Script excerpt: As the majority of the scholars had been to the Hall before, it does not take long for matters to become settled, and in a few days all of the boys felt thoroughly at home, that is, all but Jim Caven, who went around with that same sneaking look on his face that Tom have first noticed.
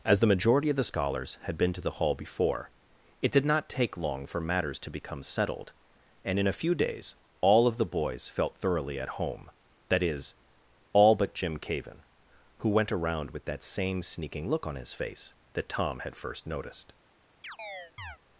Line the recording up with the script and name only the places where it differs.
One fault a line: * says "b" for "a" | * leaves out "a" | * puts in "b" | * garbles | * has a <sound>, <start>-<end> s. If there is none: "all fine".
* says "did" for "does"
* says "had" for "have"
* has a chirp, 17.4-18.2 s